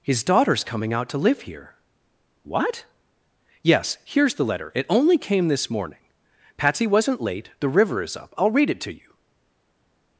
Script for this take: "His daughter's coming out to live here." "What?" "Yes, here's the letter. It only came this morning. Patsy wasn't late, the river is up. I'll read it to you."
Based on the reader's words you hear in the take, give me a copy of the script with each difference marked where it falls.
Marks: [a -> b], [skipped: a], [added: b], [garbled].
"His daughter's coming out to live here." "What?" "Yes, here's the letter. It only came this morning. Patsy wasn't late, the river is up. I'll read it to you."